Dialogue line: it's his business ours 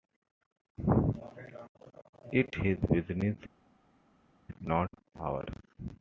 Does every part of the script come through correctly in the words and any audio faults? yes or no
no